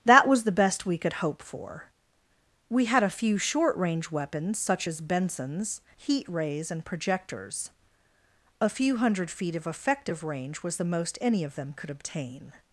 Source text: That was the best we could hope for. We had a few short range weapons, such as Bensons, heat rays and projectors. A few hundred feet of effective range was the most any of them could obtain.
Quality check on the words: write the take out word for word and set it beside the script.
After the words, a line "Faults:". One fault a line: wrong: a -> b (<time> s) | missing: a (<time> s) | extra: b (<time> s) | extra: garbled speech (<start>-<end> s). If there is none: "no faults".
That was the best we could hope for. We had a few short range weapons, such as Bensons, heat rays and projectors. A few hundred feet of effective range was the most any of them could obtain.
Faults:
no faults